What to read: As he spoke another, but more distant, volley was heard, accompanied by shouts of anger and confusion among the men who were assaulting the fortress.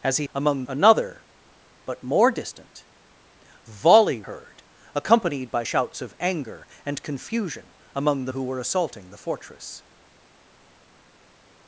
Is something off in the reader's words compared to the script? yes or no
yes